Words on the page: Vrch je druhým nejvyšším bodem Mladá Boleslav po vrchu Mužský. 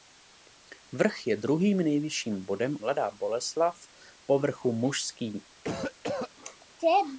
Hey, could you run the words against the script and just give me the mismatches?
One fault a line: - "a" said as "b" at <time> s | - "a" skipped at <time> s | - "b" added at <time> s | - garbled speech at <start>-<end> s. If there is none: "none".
none